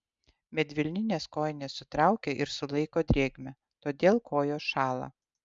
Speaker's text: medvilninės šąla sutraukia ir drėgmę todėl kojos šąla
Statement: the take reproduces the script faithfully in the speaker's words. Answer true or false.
false